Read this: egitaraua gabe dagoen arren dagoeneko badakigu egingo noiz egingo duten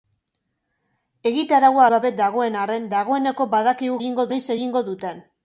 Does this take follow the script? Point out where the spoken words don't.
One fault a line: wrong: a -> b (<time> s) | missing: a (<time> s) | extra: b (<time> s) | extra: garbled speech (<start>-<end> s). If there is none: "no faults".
no faults